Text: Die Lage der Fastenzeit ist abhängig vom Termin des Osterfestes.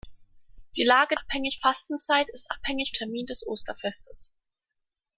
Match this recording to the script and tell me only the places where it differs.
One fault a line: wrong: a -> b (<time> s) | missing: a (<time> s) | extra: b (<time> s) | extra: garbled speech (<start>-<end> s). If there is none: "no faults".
wrong: der -> abhängig (1.2 s)
missing: vom (2.9 s)